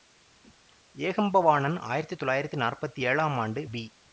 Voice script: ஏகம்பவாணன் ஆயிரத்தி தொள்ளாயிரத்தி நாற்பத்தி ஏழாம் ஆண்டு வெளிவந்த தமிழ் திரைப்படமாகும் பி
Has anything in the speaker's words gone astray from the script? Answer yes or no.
yes